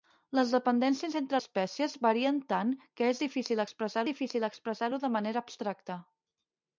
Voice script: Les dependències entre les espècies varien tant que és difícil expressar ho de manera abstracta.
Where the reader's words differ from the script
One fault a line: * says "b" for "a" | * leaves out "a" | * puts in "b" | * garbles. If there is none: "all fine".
* leaves out "les"
* puts in "difícil expressar"